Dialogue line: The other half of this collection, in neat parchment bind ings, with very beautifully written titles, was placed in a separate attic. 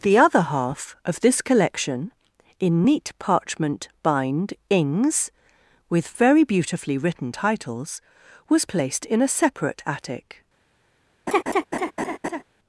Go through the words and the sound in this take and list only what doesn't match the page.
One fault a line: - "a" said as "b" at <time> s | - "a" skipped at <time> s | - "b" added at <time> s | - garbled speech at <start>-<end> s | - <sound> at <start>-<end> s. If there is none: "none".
- laugh at 11.3-12.4 s